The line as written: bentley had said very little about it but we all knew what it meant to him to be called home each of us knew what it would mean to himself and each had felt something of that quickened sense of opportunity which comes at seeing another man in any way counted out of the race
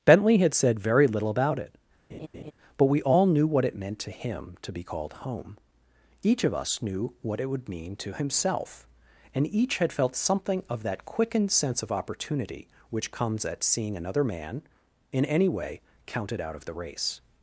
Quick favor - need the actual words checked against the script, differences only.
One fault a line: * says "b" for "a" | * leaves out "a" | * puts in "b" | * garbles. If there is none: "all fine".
all fine